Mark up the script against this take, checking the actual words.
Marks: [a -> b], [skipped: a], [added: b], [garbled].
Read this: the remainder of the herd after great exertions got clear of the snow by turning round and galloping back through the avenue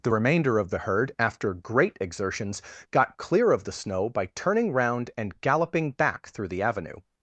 the remainder of the herd after great exertions got clear of the snow by turning round and galloping back through the avenue